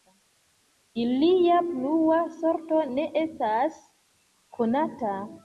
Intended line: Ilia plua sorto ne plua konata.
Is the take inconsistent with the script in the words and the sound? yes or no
yes